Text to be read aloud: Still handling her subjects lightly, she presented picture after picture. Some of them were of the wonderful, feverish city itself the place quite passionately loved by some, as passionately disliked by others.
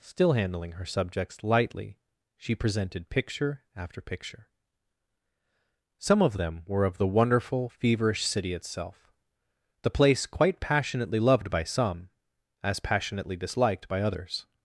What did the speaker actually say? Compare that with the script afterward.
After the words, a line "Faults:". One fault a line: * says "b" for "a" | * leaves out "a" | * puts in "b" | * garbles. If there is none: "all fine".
Still handling her subjects lightly, she presented picture after picture. Some of them were of the wonderful, feverish city itself the place quite passionately loved by some, as passionately disliked by others.
Faults:
all fine